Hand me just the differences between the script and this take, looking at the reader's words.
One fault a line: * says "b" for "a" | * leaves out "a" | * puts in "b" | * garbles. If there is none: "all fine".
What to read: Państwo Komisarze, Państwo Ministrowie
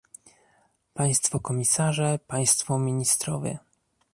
all fine